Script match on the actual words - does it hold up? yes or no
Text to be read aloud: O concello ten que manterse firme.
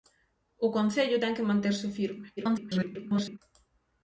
no